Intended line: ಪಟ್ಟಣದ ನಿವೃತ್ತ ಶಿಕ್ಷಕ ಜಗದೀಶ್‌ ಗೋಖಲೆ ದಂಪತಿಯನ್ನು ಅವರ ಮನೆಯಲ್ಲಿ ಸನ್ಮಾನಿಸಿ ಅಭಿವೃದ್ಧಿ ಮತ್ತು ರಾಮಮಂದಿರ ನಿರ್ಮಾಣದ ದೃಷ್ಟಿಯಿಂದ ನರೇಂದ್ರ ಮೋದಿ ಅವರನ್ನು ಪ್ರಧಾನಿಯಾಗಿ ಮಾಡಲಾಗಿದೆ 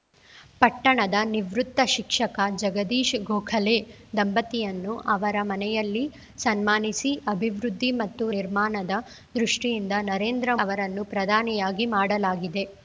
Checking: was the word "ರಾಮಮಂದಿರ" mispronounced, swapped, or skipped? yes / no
yes